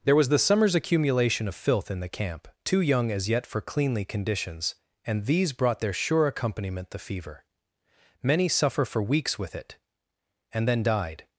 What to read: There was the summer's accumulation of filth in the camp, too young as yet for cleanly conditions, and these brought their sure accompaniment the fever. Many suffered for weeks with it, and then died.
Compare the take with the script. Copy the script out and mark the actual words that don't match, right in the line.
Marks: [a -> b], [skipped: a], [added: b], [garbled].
There was the summer's accumulation of filth in the camp, too young as yet for cleanly conditions, and these brought their sure accompaniment the fever. Many [suffered -> suffer] for weeks with it, and then died.